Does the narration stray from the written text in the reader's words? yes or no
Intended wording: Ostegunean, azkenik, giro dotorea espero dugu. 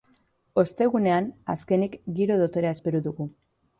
no